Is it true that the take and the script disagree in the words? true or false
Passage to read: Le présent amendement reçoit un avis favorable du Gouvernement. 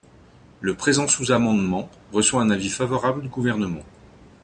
true